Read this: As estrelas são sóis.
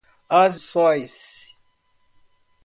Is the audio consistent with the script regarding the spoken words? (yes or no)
no